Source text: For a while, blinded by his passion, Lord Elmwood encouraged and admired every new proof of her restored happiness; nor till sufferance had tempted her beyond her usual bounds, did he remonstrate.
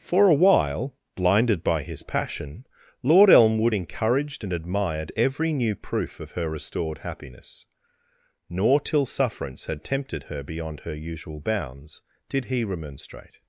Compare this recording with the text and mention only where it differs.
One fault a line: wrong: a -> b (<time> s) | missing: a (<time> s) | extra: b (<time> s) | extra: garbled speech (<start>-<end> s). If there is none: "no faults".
no faults